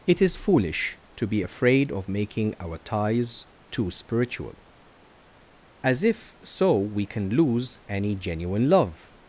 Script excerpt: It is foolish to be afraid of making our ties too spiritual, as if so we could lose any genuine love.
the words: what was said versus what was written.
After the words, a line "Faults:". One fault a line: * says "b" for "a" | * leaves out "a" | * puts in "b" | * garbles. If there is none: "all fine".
It is foolish to be afraid of making our ties too spiritual, as if so we can lose any genuine love.
Faults:
* says "can" for "could"